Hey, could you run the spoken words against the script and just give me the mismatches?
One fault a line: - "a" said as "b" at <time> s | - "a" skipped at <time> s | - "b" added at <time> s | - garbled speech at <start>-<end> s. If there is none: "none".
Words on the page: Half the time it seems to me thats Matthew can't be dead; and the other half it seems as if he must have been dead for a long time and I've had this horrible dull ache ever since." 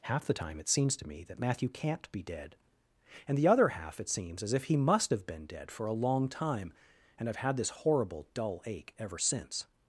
- "thats" said as "that" at 1.2 s